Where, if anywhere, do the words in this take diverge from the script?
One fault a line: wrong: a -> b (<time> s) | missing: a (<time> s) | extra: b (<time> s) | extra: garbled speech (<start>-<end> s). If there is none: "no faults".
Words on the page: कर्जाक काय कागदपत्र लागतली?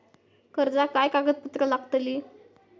no faults